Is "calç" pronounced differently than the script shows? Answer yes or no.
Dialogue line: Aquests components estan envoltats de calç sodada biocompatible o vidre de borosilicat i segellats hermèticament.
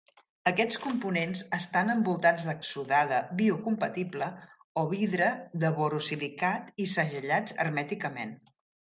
yes